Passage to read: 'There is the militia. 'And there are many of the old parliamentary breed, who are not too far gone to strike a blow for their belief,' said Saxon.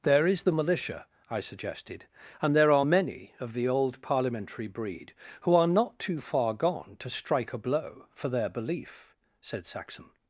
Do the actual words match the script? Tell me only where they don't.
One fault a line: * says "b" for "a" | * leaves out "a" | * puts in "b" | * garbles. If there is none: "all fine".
* puts in "I suggested"